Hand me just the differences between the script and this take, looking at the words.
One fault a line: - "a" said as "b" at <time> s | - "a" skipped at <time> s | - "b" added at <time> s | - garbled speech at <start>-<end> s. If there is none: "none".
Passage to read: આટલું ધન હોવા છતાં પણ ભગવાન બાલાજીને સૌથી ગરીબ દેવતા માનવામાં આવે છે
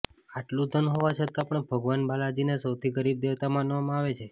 none